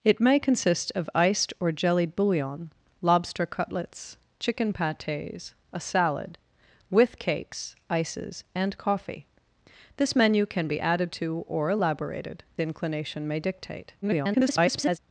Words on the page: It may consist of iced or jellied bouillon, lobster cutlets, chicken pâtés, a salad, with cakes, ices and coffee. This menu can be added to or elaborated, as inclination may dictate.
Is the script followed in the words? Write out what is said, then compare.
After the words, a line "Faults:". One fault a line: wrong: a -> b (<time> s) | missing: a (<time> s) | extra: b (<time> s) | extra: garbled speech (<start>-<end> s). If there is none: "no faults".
It may consist of iced or jellied bouillon, lobster cutlets, chicken pâtés, a salad, with cakes, ices and coffee. This menu can be added to or elaborated, inclination may dictate. [garbled]
Faults:
missing: as (12.4 s)
extra: garbled speech (14.0-15.0 s)